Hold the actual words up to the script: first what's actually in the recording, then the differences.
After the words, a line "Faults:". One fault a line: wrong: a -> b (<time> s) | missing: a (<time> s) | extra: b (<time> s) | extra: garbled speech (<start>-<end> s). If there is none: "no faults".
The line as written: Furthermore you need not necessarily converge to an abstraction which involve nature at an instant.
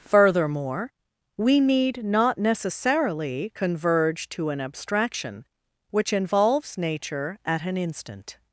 Furthermore we need not necessarily converge to an abstraction which involves nature at an instant.
Faults:
wrong: you -> we (1.4 s)
wrong: involve -> involves (6.1 s)